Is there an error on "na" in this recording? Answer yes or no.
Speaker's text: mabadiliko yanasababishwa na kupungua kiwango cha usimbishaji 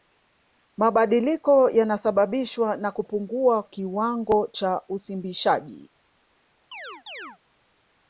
no